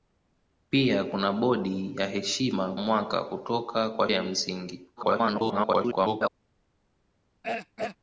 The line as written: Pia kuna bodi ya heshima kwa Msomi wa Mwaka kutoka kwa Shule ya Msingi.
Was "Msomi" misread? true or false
true